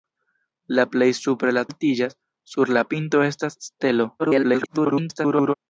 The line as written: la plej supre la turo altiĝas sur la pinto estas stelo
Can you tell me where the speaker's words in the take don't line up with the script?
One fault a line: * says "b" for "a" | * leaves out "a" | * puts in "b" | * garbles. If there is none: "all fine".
* leaves out "turo"
* garbles